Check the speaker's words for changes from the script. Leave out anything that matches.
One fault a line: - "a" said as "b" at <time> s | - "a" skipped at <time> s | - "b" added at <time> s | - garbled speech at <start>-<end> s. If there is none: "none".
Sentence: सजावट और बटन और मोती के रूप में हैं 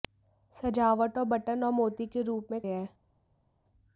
none